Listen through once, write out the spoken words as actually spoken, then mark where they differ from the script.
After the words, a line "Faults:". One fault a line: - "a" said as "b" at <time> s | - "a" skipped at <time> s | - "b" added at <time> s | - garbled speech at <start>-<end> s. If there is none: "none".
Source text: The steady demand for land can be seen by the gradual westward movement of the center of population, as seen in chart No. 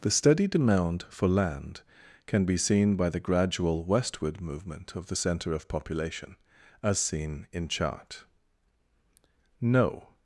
The steady demand for land can be seen by the gradual westward movement of the center of population, as seen in chart No.
Faults:
none